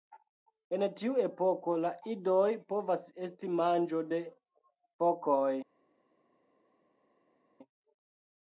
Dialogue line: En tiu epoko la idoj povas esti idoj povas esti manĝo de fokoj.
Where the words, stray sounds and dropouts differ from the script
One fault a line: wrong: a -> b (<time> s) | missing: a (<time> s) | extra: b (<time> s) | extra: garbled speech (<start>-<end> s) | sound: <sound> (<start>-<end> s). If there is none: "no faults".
missing: idoj povas esti (3.5 s)